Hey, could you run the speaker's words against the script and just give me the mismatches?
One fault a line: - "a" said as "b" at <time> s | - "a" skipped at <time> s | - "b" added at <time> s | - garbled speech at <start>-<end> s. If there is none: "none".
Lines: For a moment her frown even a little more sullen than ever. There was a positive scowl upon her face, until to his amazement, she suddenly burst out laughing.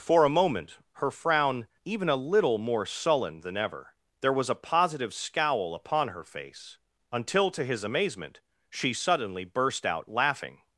none